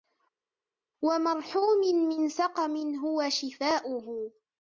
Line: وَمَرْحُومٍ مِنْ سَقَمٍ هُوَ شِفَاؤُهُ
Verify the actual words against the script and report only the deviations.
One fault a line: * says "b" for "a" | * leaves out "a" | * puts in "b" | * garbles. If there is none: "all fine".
all fine